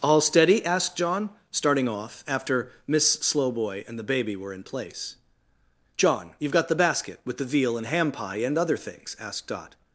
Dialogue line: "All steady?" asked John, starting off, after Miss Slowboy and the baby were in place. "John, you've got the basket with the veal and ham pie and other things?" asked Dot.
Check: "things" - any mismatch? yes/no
no